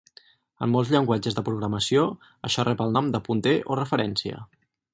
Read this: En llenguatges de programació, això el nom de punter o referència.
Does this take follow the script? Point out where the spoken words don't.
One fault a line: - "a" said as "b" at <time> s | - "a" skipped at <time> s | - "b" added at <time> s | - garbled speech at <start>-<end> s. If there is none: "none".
- "molts" added at 0.8 s
- "rep" added at 2.7 s